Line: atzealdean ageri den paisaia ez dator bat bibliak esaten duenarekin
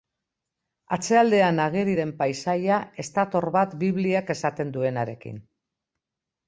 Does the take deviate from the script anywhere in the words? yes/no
no